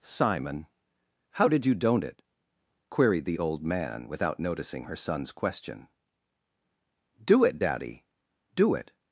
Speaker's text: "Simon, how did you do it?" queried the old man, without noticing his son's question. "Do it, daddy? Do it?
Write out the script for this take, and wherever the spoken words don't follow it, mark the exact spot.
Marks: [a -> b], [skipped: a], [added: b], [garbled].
"Simon, how did you [do -> don't] it?" queried the old man, without noticing [his -> her] son's question. "Do it, daddy? Do it?